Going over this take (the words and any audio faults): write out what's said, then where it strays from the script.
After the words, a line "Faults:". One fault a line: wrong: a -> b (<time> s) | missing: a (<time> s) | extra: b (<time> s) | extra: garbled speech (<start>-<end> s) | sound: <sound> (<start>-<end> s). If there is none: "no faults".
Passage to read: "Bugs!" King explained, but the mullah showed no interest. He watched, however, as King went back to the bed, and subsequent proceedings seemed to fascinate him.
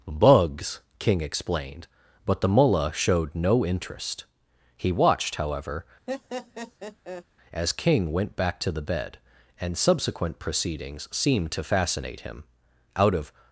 "Bugs!" King explained, but the mullah showed no interest. He watched, however, as King went back to the bed, and subsequent proceedings seemed to fascinate him. Out of
Faults:
sound: laugh (6.1-7.2 s)
extra: Out of (13.0 s)